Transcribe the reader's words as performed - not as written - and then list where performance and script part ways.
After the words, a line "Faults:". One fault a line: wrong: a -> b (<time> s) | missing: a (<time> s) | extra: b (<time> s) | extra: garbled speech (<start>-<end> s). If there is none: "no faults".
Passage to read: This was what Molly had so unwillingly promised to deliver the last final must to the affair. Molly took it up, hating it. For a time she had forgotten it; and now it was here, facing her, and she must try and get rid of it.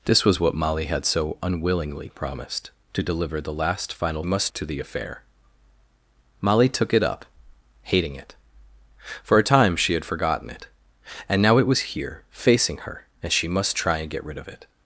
This was what Molly had so unwillingly promised to deliver the last final must to the affair. Molly took it up, hating it. For a time she had forgotten it; and now it was here, facing her, and she must try and get rid of it.
Faults:
no faults